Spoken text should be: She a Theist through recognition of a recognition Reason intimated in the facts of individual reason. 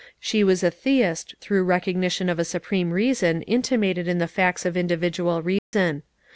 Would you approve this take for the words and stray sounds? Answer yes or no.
no